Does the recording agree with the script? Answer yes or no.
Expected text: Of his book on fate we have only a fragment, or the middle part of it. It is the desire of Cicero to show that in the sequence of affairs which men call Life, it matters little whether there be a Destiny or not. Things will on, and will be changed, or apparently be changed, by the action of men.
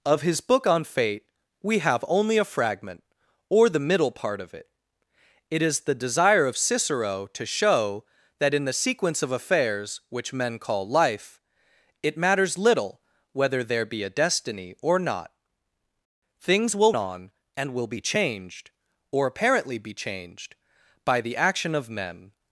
yes